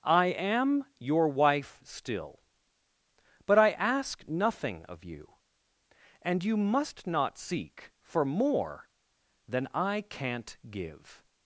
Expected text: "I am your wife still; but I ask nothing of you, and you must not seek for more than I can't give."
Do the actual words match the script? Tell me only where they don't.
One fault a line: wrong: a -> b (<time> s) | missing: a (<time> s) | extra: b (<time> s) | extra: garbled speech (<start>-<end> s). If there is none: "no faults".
no faults